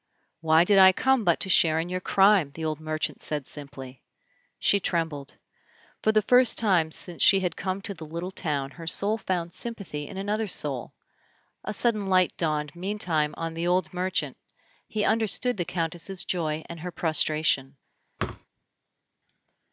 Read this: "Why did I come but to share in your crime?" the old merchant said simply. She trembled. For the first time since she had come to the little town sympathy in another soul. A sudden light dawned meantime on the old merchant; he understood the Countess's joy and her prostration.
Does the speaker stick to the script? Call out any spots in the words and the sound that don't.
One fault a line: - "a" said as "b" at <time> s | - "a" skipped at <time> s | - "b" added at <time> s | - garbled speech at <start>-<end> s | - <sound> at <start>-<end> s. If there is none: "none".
- "her soul found" added at 8.7 s
- thud at 18.2-18.5 s